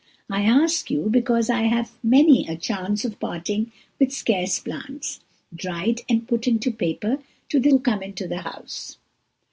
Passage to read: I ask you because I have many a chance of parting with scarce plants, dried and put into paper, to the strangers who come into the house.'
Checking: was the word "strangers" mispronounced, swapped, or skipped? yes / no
yes